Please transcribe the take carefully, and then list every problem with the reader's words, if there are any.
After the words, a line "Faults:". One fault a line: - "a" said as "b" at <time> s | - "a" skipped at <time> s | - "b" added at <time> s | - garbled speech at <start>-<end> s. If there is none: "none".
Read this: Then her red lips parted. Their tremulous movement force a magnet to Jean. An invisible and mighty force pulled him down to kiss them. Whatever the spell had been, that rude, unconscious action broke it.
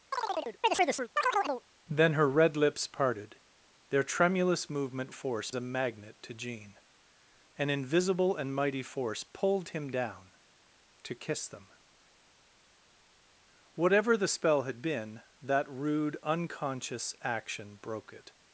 Then her red lips parted. Their tremulous movement force a magnet to Jean. An invisible and mighty force pulled him down to kiss them. Whatever the spell had been, that rude, unconscious action broke it.
Faults:
none